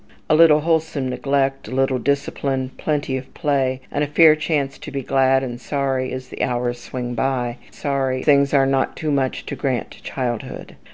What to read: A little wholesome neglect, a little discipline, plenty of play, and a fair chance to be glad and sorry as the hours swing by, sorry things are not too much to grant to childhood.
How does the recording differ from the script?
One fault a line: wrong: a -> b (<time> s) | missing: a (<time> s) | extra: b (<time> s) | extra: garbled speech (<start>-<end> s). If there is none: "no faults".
no faults